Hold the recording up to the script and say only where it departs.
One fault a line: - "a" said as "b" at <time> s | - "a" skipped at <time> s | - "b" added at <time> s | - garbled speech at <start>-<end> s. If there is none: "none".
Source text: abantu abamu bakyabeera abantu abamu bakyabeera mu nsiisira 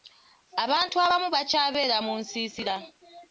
- "abantu abamu bakyabeera" skipped at 2.0 s